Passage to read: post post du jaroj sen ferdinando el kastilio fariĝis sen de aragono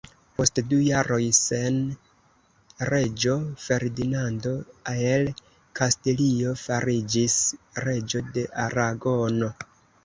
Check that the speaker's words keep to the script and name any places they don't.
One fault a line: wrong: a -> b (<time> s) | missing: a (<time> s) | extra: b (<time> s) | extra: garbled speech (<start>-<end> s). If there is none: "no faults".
missing: post (0.6 s)
extra: reĝo (2.9 s)
wrong: sen -> reĝo (7.9 s)